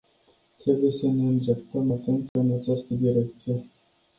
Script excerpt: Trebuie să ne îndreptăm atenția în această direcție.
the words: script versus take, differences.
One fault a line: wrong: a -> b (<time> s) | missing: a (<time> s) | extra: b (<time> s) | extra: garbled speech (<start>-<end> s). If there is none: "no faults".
no faults